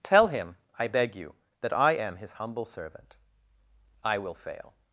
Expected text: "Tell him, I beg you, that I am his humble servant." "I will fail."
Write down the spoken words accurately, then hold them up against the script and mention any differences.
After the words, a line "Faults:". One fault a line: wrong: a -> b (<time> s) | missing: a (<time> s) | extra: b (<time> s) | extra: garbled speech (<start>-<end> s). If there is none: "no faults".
"Tell him, I beg you, that I am his humble servant." "I will fail."
Faults:
no faults